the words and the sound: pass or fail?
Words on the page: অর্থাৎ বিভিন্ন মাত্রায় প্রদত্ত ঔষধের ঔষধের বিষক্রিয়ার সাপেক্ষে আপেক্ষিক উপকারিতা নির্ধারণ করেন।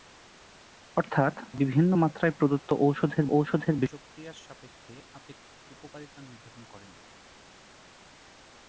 pass